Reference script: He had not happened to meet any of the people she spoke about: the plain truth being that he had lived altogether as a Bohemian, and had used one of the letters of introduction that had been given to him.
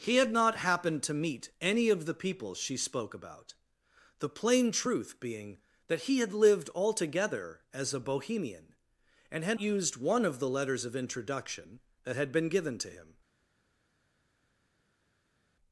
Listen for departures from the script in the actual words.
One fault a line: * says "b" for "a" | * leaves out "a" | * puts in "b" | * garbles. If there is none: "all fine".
all fine